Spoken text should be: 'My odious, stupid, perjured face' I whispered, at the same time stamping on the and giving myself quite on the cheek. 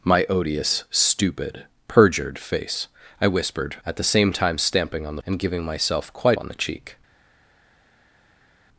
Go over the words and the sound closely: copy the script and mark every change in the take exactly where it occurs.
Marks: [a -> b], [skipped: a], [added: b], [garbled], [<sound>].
'My odious, stupid, perjured face' I whispered, at the same time stamping on the and giving myself quite on the cheek.